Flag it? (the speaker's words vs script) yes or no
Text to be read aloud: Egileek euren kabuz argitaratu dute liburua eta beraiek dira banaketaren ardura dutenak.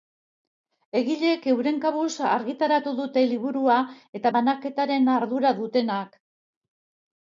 yes